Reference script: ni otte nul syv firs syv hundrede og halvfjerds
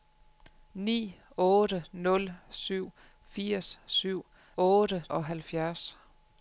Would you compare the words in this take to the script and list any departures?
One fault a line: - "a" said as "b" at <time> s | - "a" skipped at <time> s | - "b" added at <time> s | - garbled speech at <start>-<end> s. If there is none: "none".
- "hundrede" said as "otte" at 4.6 s